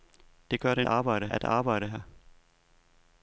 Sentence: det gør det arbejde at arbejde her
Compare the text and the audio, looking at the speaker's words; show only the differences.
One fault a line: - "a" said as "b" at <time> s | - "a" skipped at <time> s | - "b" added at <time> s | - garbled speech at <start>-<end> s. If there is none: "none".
none